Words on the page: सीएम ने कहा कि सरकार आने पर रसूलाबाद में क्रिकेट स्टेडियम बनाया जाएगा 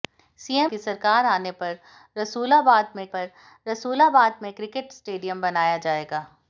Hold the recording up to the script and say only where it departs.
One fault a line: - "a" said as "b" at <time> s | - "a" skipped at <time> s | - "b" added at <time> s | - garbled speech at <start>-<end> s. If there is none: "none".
- "ने कहा" skipped at 0.7 s
- "पर रसूलाबाद में" added at 3.1 s